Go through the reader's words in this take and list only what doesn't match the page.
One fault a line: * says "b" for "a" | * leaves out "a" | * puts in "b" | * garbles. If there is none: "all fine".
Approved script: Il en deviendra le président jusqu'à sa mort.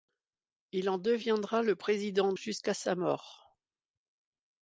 all fine